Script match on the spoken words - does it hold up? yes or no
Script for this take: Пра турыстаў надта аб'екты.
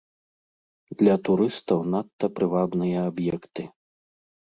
no